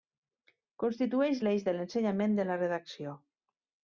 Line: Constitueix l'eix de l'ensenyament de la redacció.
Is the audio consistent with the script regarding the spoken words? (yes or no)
yes